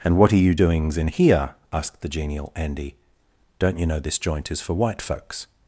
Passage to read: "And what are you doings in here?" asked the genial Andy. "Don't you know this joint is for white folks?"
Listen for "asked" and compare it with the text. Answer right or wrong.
right